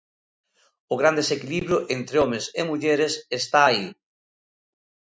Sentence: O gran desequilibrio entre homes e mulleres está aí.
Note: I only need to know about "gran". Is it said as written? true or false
true